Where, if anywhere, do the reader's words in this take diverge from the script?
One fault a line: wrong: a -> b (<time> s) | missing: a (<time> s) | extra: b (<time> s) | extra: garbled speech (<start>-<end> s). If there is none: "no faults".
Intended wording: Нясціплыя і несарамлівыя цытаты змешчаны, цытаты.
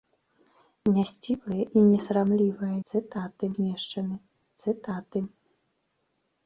no faults